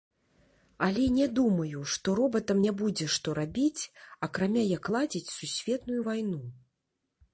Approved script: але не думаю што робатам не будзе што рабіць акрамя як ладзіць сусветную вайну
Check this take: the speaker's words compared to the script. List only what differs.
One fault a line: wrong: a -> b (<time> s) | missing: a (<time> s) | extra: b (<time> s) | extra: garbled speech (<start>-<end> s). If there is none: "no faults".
no faults